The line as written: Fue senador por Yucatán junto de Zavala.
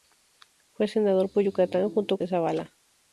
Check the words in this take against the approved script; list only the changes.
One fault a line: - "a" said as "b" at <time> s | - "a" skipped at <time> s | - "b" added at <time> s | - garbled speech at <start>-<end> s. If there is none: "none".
none